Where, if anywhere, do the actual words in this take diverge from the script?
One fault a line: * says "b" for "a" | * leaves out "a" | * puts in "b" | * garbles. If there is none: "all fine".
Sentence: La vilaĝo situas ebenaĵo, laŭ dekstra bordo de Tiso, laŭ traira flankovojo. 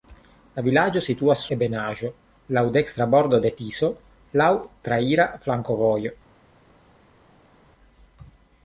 all fine